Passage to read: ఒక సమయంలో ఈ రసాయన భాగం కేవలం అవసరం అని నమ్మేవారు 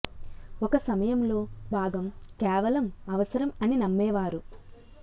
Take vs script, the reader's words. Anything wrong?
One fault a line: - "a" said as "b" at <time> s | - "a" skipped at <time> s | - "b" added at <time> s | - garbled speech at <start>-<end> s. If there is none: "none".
- "ఈ రసాయన" skipped at 1.4 s